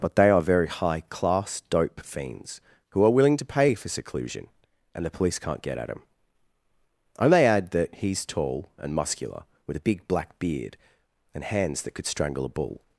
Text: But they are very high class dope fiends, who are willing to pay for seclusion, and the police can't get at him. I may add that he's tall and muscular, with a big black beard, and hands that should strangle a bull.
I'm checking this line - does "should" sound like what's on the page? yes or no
no